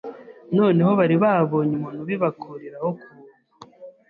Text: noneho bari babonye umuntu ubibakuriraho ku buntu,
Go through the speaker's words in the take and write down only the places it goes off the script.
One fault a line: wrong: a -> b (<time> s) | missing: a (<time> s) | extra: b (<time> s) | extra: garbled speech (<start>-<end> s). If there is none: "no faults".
no faults